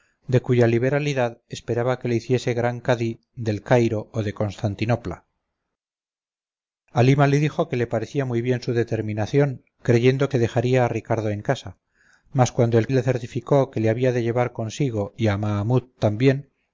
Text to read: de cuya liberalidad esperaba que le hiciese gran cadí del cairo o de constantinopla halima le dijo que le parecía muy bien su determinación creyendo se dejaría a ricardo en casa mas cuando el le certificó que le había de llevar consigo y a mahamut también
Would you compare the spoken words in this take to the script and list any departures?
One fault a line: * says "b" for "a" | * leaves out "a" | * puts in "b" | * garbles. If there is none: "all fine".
all fine